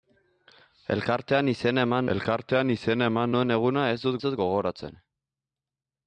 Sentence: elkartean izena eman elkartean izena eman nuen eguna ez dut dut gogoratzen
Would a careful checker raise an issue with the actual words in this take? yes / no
no